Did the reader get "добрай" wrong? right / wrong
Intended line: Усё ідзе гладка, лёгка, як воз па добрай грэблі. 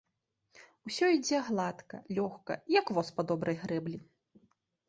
right